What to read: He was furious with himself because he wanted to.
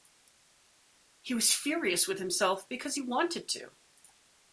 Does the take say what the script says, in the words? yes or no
yes